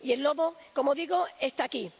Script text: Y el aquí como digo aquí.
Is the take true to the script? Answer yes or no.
no